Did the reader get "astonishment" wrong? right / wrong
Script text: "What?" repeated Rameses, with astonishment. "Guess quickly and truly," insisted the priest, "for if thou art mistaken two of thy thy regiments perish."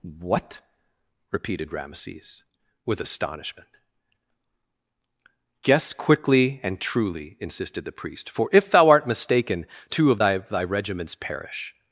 right